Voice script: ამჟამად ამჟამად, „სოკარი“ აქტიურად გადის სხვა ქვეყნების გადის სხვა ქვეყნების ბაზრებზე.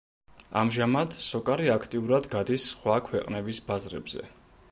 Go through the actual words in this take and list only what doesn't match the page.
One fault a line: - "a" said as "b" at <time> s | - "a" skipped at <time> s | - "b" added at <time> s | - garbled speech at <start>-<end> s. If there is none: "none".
- "ამჟამად" skipped at 1.1 s
- "გადის სხვა ქვეყნების" skipped at 3.6 s